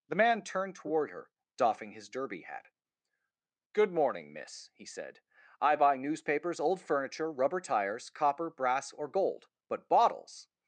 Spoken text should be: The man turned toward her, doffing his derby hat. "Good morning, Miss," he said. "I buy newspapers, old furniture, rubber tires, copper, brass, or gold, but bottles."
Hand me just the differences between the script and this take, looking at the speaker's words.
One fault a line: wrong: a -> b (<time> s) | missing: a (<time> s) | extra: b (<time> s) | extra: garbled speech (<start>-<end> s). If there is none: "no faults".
no faults